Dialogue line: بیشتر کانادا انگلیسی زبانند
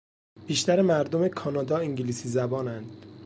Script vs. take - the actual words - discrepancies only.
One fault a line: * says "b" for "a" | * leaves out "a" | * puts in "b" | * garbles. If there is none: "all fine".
* puts in "مردم"